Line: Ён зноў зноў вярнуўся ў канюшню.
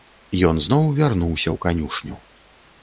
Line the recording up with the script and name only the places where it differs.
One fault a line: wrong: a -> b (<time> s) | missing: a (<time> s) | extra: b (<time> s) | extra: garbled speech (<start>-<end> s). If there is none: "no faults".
missing: зноў (0.9 s)